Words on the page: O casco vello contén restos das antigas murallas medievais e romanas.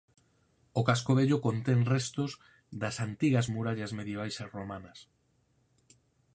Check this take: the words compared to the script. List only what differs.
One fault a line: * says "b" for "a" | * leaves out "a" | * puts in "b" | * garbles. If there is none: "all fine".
all fine